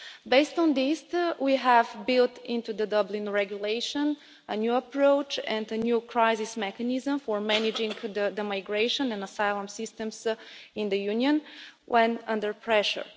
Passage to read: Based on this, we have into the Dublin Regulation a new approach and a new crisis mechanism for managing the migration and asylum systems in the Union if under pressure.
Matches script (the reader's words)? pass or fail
fail